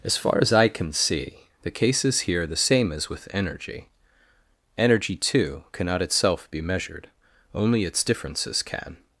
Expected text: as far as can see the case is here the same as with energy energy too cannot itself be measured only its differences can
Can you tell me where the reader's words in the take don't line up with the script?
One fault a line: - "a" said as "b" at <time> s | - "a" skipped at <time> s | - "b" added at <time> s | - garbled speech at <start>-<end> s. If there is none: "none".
- "i" added at 0.5 s